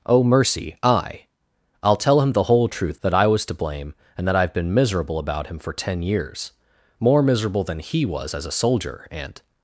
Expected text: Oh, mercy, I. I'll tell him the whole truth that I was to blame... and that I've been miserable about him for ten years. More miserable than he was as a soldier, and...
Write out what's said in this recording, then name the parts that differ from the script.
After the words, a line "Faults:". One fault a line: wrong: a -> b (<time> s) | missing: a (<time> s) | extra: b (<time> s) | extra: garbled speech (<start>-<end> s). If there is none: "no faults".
Oh, mercy, I. I'll tell him the whole truth that I was to blame... and that I've been miserable about him for ten years. More miserable than he was as a soldier, and...
Faults:
no faults